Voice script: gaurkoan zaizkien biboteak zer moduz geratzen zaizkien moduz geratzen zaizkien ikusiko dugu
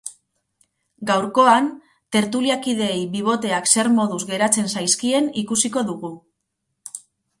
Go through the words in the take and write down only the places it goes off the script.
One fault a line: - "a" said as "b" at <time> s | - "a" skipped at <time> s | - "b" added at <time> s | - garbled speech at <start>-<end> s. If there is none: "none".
- "zaizkien" said as "tertuliakideei" at 2.2 s
- "moduz geratzen zaizkien" skipped at 5.3 s